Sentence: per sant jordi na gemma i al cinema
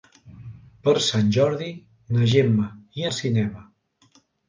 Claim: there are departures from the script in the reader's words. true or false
false